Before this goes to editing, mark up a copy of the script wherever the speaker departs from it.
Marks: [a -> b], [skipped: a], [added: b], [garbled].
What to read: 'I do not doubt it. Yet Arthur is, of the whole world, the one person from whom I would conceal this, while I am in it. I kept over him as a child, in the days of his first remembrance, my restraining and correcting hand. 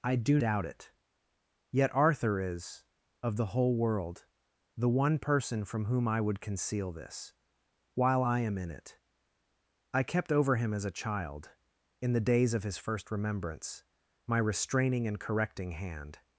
'I do [skipped: not] doubt it. Yet Arthur is, of the whole world, the one person from whom I would conceal this, while I am in it. I kept over him as a child, in the days of his first remembrance, my restraining and correcting hand.